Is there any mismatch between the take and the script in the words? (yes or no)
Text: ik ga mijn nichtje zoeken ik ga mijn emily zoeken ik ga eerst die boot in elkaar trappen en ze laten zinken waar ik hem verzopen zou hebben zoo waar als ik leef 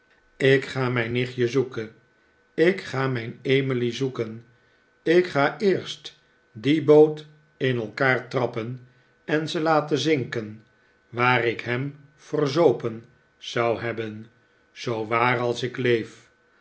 no